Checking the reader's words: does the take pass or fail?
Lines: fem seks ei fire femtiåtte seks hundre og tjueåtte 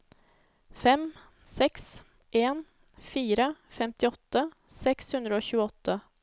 fail